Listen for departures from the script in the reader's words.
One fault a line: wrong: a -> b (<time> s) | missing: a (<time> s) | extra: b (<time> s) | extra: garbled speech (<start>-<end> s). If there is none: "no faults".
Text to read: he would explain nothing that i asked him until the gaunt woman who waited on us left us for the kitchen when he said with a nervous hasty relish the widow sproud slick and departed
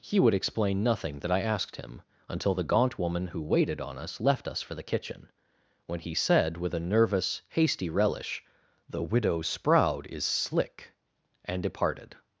extra: is (10.1 s)